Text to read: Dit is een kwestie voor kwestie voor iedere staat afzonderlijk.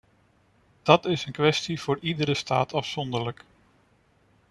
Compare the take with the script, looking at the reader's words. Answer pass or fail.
fail